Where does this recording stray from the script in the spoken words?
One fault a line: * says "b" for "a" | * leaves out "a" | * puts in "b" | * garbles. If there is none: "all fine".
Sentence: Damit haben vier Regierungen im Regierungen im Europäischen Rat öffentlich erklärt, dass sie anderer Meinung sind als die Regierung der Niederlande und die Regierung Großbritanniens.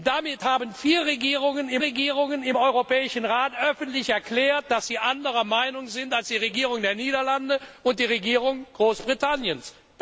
all fine